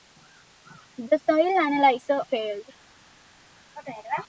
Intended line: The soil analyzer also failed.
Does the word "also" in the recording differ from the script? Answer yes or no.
yes